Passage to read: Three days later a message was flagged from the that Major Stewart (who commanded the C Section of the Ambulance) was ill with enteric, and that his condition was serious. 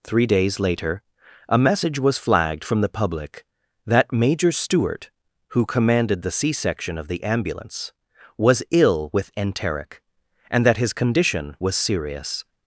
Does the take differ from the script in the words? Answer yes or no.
yes